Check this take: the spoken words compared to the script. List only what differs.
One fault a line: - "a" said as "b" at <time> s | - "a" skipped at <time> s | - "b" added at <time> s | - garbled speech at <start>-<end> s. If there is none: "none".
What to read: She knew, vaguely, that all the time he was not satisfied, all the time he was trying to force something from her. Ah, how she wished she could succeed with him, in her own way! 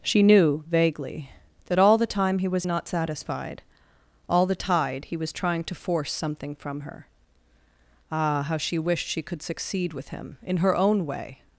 - "time" said as "tide" at 4.5 s